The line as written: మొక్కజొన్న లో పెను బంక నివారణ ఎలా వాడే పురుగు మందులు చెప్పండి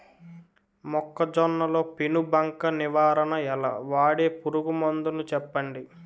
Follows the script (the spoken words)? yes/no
yes